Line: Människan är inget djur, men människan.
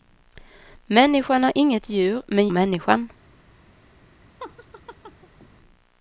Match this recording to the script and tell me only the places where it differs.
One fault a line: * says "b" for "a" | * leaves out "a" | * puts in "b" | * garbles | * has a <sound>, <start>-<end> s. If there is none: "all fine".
* has a laugh, 4.4-5.5 s